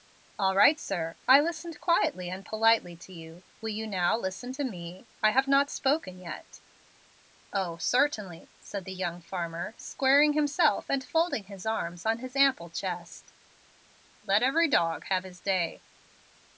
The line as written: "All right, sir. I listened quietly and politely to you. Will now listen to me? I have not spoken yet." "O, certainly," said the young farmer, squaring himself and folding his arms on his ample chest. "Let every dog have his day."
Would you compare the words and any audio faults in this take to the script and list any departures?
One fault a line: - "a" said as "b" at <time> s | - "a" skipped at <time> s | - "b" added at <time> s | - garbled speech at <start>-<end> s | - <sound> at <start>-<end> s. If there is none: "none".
- "you" added at 3.7 s